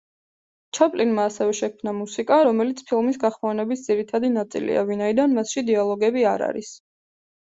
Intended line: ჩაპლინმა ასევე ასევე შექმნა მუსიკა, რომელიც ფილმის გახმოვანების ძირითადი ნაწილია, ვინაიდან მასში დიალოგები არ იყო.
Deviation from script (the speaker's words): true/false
true